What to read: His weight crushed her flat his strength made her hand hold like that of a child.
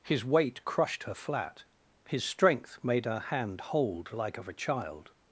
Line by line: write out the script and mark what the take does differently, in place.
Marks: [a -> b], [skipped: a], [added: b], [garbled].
His weight crushed her flat his strength made her hand hold like [skipped: that] of a child.